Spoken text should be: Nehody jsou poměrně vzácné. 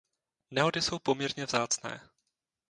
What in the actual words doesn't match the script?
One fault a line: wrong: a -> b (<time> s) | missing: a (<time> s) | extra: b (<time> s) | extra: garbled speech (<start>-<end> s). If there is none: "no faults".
no faults